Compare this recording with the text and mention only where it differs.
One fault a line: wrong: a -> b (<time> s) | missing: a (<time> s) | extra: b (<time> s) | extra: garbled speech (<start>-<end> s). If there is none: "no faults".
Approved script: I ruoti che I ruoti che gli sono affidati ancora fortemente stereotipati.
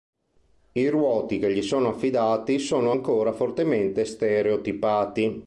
missing: I ruoti che (1.5 s)
extra: sono (2.6 s)